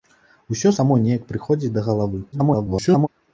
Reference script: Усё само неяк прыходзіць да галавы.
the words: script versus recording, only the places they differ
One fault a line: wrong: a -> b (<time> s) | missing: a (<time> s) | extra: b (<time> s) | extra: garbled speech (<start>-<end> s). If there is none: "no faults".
extra: garbled speech (2.3-3.1 s)